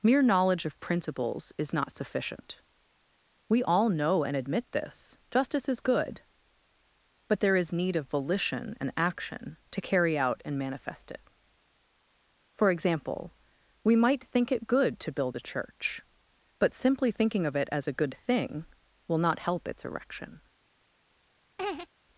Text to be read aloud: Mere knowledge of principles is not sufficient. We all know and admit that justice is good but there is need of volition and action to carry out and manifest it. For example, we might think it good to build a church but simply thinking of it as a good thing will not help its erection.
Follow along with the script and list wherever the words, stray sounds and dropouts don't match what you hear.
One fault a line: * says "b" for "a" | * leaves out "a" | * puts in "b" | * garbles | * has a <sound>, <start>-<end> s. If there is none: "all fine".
* says "this" for "that"
* has a laugh, 21.6-21.9 s